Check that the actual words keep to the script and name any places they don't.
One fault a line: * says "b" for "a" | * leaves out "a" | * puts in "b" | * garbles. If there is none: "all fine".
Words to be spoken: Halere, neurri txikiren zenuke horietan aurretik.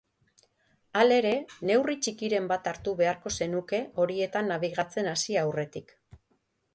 * puts in "bat hartu beharko"
* puts in "nabigatzen hasi"